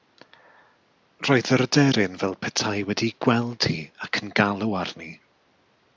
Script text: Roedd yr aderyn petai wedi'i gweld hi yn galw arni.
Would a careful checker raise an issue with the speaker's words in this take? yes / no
yes